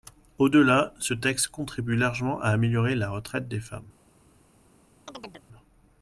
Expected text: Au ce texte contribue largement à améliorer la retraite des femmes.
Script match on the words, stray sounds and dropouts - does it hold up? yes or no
no